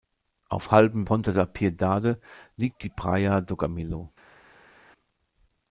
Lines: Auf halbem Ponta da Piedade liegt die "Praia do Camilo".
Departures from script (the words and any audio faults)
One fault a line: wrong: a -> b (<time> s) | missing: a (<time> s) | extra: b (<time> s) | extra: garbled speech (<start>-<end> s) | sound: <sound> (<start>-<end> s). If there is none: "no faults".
no faults